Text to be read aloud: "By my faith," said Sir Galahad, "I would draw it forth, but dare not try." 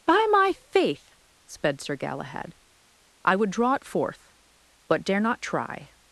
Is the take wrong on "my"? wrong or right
right